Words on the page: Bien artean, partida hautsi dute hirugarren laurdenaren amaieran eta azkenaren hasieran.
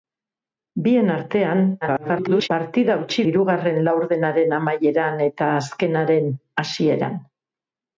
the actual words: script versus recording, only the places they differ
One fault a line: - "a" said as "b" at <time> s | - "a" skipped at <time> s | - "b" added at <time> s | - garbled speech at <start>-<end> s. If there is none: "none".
- garbled speech at 1.8-2.5 s
- "dute" skipped at 3.2 s